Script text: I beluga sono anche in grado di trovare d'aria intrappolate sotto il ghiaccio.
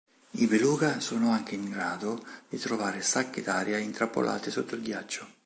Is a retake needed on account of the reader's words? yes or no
yes